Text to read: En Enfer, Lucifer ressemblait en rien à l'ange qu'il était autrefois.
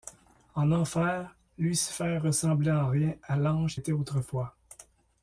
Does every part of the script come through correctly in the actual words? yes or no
no